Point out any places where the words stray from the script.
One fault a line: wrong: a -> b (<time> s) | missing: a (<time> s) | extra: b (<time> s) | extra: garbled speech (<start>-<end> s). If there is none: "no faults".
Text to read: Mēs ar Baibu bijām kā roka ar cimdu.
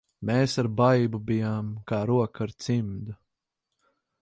no faults